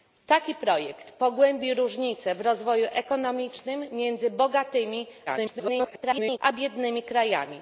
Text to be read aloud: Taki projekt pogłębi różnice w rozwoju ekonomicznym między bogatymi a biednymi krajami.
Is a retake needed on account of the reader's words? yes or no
yes